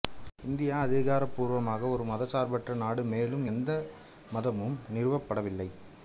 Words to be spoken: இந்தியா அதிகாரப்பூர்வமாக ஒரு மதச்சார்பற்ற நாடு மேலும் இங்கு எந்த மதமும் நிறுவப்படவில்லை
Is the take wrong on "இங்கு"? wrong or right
wrong